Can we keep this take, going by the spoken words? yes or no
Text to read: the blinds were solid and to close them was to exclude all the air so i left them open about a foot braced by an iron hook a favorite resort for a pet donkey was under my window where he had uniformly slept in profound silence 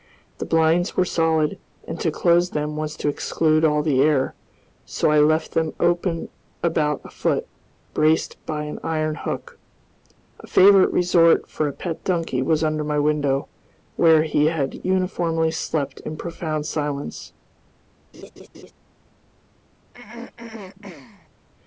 yes